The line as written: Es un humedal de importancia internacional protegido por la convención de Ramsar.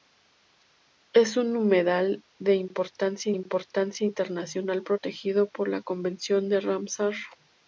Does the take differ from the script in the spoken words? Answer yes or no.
yes